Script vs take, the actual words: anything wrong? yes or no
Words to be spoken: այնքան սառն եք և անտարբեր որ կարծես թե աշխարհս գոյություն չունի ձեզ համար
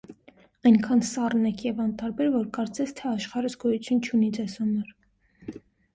no